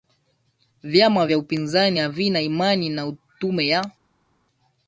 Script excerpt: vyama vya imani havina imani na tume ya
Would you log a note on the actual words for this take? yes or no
yes